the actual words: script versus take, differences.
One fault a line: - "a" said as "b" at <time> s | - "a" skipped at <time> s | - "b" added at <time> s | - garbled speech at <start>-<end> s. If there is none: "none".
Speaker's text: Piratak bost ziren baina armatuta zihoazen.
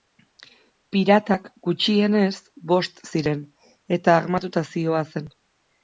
- "gutxienez" added at 1.7 s
- "baina" said as "eta" at 4.0 s